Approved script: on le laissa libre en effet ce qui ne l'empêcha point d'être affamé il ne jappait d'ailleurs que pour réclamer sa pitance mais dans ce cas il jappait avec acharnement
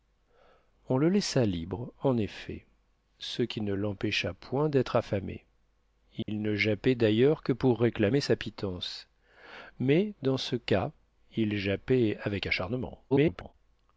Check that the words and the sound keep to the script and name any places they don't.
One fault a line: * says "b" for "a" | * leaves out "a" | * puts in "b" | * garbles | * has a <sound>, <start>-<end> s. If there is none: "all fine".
* has a dropout, 6.2-6.3 s
* garbles